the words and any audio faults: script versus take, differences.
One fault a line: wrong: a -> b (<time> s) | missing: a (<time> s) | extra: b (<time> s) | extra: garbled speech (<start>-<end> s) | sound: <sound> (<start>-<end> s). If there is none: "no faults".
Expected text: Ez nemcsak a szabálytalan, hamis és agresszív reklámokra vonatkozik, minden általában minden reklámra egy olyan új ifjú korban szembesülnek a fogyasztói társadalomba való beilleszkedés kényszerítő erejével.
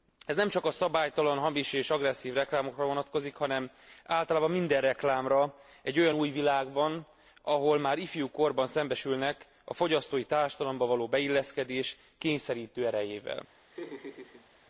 wrong: minden -> hanem (3.4 s)
extra: világban ahol már (6.3 s)
sound: laugh (13.7-14.5 s)